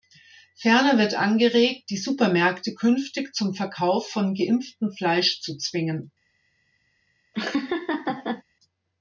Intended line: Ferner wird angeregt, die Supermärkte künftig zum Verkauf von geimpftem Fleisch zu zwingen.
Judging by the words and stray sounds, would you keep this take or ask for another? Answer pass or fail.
fail